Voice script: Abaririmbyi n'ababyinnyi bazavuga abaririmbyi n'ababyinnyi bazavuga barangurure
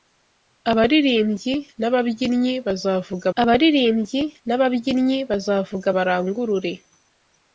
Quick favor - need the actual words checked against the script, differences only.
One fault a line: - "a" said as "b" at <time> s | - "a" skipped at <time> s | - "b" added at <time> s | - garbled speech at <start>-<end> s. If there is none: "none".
none